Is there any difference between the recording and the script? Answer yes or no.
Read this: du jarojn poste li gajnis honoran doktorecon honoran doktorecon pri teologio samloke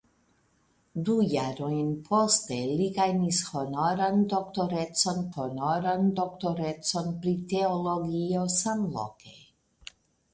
no